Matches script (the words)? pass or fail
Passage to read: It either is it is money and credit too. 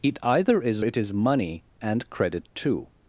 pass